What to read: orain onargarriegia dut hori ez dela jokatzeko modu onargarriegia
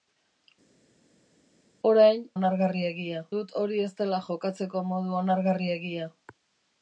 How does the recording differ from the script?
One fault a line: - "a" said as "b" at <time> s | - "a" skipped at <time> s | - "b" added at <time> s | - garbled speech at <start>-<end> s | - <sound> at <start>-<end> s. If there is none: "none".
none